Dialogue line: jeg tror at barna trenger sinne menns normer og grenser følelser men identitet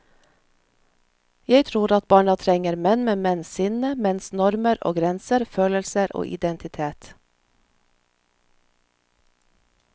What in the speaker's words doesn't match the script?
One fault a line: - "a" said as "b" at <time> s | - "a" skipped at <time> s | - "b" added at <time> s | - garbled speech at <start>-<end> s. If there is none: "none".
- "menn med menns" added at 2.8 s
- "men" said as "og" at 6.1 s